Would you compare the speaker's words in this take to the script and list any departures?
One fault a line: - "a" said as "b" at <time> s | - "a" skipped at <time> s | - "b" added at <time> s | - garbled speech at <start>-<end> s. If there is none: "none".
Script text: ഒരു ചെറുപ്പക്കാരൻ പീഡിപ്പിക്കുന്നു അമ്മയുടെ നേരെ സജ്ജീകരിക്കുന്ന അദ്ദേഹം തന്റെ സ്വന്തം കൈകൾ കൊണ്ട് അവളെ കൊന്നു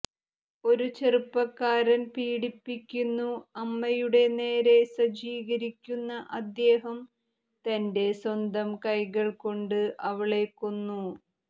none